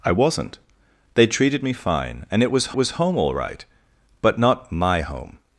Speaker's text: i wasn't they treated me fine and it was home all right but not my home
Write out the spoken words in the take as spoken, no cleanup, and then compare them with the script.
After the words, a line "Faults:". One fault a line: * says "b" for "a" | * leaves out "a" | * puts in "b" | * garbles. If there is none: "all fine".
i wasn't they treated me fine and it was was home all right but not my home
Faults:
* puts in "was"